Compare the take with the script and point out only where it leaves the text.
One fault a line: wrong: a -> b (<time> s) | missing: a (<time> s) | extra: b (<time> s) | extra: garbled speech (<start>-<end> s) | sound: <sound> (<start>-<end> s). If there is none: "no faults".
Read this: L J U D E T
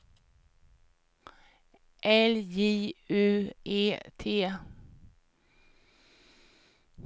missing: D (3.5 s)